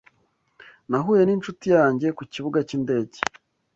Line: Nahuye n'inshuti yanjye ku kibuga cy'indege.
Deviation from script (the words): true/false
false